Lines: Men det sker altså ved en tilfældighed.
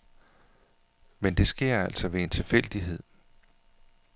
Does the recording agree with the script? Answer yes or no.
yes